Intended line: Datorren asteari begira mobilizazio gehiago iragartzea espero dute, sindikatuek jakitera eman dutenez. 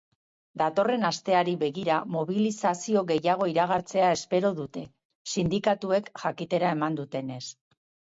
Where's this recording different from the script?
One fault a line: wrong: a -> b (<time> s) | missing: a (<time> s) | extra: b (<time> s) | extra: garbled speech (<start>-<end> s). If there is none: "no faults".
no faults